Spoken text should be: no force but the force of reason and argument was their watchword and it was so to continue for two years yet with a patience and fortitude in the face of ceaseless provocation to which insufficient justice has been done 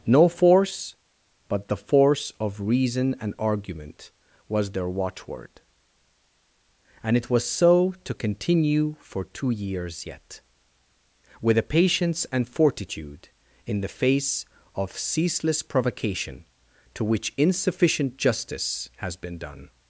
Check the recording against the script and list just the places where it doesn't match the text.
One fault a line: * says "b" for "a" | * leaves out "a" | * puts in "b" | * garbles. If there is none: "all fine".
all fine